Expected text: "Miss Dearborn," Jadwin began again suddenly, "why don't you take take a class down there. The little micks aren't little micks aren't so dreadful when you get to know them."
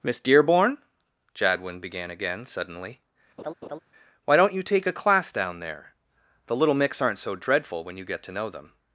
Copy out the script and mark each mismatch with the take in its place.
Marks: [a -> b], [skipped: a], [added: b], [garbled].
"Miss Dearborn," Jadwin began again suddenly, "why don't you take [skipped: take] a class down there. The little micks aren't [skipped: little micks aren't] so dreadful when you get to know them."